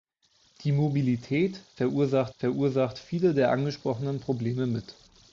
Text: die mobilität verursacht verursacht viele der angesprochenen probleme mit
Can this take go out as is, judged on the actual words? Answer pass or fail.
pass